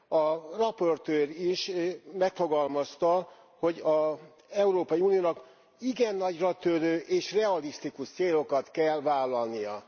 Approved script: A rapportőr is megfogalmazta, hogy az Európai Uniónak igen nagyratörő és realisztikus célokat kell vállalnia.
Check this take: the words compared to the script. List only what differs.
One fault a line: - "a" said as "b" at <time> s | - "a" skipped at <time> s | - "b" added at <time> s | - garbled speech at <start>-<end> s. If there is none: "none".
none